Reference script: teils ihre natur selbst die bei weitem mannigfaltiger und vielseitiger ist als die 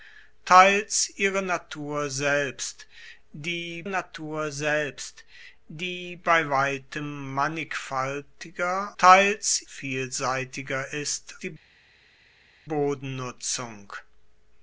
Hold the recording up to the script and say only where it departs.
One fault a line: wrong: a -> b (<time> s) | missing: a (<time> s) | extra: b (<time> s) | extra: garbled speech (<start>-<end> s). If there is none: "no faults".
extra: natur selbst die (3.9 s)
wrong: und -> teils (9.0 s)
missing: als (11.3 s)